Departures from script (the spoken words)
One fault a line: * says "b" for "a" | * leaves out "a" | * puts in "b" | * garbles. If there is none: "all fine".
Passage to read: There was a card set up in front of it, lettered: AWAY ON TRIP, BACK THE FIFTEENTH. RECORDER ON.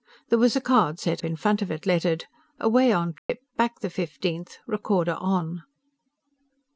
* leaves out "up"